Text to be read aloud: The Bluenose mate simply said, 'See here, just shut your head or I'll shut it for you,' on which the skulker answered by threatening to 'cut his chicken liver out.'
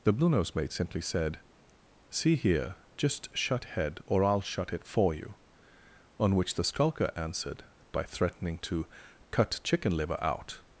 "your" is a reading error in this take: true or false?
true